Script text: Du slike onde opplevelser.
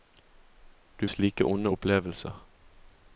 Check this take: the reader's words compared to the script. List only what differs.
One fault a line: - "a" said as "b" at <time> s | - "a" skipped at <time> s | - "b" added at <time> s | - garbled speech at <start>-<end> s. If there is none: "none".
none